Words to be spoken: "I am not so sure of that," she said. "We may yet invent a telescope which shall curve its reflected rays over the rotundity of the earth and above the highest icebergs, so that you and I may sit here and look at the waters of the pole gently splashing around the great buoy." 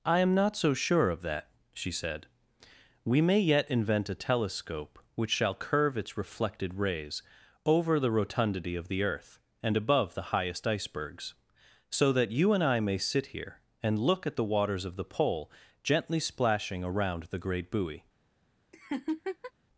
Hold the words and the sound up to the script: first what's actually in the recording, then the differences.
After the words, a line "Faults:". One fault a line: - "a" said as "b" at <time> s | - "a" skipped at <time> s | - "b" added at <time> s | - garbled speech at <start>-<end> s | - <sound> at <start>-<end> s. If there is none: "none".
"I am not so sure of that," she said. "We may yet invent a telescope which shall curve its reflected rays over the rotundity of the earth and above the highest icebergs, so that you and I may sit here and look at the waters of the pole gently splashing around the great buoy."
Faults:
- laugh at 18.7-19.5 s